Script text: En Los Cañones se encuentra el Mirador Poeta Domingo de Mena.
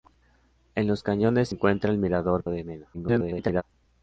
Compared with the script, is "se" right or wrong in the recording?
wrong